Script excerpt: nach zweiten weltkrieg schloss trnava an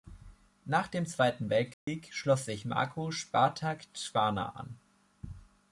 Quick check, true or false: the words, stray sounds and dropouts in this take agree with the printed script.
false